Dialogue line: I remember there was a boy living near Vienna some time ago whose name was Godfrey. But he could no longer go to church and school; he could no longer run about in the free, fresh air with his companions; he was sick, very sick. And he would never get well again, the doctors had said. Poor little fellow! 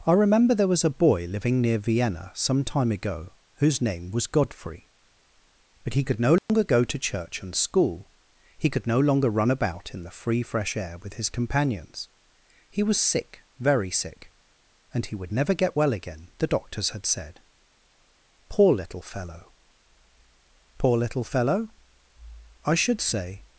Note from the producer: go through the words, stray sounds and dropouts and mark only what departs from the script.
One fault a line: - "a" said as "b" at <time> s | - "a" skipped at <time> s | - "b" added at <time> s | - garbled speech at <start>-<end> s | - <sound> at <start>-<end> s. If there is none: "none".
- dropout at 6.4-6.5 s
- "Poor little fellow I should say" added at 20.8 s